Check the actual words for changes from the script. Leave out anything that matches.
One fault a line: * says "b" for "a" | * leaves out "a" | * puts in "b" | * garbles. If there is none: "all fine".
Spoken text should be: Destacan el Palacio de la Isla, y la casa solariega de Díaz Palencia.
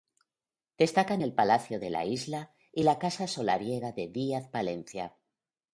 all fine